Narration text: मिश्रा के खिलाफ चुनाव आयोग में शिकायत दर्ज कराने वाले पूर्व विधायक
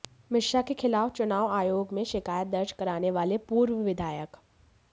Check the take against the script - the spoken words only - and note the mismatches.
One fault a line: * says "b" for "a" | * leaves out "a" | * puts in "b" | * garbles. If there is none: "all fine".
all fine